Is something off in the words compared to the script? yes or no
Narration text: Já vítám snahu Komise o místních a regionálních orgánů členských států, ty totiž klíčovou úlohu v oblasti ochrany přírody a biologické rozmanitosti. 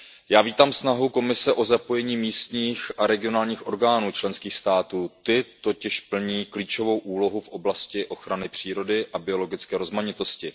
yes